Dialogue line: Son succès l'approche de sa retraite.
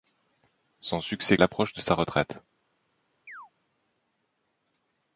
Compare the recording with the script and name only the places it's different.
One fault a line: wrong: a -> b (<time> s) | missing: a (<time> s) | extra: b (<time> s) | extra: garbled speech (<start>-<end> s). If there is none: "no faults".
no faults